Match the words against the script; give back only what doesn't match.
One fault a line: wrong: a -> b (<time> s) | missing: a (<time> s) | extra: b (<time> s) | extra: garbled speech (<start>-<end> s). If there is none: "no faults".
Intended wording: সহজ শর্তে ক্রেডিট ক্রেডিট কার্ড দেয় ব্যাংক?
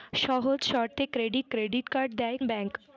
no faults